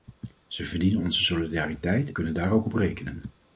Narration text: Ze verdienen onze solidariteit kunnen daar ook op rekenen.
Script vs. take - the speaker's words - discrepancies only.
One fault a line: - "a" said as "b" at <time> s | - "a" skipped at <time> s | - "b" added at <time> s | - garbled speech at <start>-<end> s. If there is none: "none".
none